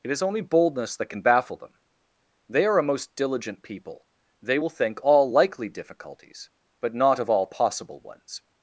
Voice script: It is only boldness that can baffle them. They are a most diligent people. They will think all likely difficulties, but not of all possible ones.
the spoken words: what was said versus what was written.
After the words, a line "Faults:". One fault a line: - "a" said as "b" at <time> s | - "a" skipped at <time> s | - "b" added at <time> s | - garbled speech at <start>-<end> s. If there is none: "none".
It is only boldness that can baffle them. They are a most diligent people. They will think all likely difficulties, but not of all possible ones.
Faults:
none